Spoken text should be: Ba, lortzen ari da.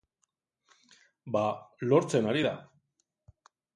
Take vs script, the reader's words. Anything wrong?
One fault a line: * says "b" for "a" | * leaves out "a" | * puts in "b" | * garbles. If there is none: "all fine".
all fine